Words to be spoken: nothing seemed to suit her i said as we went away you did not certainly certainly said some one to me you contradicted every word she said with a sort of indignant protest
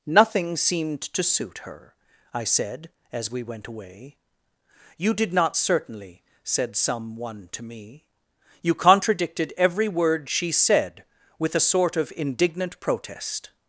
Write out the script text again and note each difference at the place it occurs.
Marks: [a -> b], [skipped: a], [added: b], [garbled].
nothing seemed to suit her i said as we went away you did not certainly [skipped: certainly] said some one to me you contradicted every word she said with a sort of indignant protest